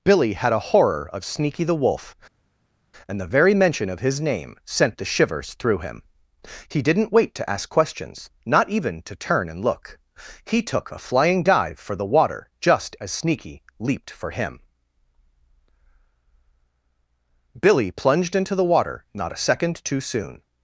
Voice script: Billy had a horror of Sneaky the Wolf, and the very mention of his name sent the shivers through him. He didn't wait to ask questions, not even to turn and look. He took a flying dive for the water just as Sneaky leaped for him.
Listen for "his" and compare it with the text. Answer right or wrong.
right